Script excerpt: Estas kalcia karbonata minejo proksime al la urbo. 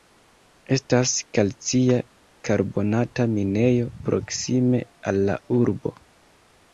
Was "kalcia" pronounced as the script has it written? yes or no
yes